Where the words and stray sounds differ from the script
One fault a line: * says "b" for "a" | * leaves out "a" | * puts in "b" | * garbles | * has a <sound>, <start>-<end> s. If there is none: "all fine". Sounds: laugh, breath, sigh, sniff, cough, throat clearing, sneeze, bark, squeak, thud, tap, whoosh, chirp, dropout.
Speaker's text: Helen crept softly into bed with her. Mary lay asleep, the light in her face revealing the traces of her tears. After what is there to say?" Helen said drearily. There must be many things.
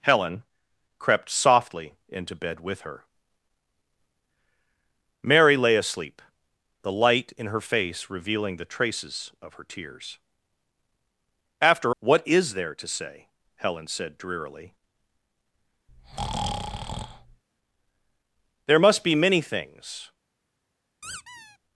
* has a breath, 15.9-17.4 s
* has a squeak, 21.0-21.6 s